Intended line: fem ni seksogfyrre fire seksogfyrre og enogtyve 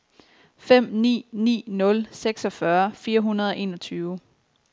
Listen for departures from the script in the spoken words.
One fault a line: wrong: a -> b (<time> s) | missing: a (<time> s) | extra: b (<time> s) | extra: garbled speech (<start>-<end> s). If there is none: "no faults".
extra: ni nul (1.3 s)
wrong: seksogfyrre -> hundrede (3.2 s)